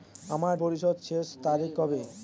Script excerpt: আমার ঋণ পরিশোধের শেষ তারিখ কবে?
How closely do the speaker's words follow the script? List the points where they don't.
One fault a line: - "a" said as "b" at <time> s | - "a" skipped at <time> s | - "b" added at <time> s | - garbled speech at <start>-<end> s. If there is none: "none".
- "ঋণ" skipped at 0.6 s